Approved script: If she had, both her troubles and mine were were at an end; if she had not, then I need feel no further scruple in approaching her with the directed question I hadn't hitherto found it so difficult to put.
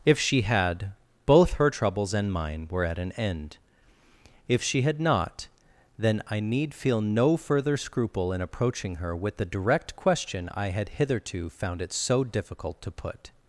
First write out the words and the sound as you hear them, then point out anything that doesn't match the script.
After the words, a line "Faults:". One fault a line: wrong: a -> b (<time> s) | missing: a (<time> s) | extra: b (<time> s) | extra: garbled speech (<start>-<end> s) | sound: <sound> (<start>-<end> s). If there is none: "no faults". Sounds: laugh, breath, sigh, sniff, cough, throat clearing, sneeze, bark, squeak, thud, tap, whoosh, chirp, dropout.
If she had, both her troubles and mine were at an end; if she had not, then I need feel no further scruple in approaching her with the direct question I had hitherto found it so difficult to put.
Faults:
missing: were (2.9 s)
wrong: directed -> direct (9.5 s)
wrong: hadn't -> had (10.7 s)